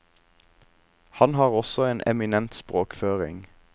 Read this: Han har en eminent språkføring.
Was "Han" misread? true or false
false